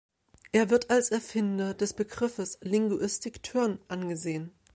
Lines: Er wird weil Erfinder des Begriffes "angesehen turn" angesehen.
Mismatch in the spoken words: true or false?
true